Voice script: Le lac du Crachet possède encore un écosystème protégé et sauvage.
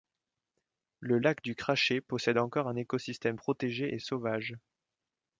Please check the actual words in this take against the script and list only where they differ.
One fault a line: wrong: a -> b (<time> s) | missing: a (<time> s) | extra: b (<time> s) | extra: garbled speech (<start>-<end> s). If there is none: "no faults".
no faults